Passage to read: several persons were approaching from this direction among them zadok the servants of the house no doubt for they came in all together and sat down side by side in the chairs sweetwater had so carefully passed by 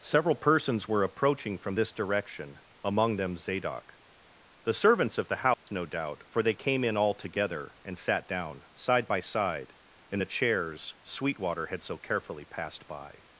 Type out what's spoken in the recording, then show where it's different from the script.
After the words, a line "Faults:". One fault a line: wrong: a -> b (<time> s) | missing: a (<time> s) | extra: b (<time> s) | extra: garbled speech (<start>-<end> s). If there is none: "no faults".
several persons were approaching from this direction among them zadok the servants of the house no doubt for they came in all together and sat down side by side in the chairs sweetwater had so carefully passed by
Faults:
no faults